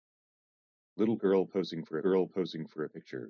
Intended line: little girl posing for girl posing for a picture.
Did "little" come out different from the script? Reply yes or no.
no